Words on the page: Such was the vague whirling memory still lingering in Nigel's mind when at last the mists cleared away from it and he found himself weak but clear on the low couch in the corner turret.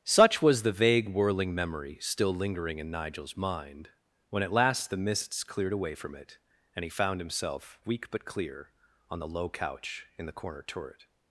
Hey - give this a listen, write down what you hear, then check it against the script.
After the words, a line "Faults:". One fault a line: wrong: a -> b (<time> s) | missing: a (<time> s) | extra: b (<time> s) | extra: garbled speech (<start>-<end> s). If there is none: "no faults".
Such was the vague whirling memory still lingering in Nigel's mind when at last the mists cleared away from it and he found himself weak but clear on the low couch in the corner turret.
Faults:
no faults